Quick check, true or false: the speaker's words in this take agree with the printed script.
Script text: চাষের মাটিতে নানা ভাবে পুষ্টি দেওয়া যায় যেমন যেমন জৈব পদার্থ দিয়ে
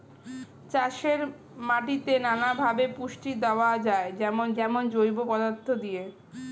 true